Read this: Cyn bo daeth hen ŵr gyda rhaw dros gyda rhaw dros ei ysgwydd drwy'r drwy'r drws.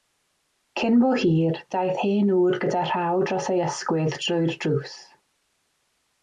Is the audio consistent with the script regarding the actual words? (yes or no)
no